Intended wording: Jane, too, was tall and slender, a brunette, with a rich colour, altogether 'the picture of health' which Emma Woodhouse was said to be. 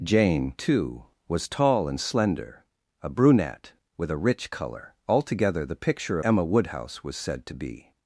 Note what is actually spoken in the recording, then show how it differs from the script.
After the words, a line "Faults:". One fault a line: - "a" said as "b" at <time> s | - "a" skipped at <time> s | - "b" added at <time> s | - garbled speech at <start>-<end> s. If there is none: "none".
Jane, too, was tall and slender, a brunette, with a rich colour, altogether 'the picture Emma Woodhouse was said to be.
Faults:
- "of health which" skipped at 6.2 s